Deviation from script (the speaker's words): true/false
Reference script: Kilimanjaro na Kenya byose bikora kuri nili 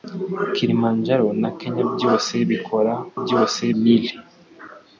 true